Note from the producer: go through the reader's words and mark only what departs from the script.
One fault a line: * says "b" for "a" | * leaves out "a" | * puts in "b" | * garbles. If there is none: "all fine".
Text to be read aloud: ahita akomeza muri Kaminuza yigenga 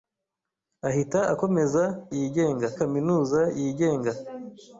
* says "yigenga" for "muri"